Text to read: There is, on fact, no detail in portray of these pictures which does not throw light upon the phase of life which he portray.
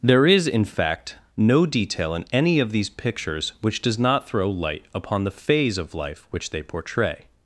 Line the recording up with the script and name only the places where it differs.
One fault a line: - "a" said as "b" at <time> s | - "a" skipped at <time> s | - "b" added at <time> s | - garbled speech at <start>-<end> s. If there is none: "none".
- "on" said as "in" at 0.5 s
- "portray" said as "any" at 2.3 s
- "he" said as "they" at 6.5 s